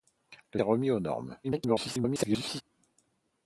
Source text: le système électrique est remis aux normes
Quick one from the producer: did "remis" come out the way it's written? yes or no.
yes